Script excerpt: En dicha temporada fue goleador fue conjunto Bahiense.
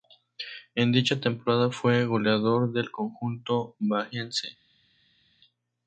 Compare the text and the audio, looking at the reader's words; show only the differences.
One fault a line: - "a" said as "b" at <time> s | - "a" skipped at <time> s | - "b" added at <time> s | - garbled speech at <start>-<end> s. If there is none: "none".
- "fue" said as "del" at 2.7 s